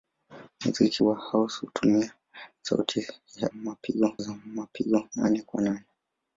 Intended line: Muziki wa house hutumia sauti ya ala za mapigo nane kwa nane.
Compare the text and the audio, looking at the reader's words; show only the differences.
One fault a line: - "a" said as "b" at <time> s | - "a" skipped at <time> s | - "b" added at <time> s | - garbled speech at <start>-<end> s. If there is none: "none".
- "ala" said as "mapigo" at 3.5 s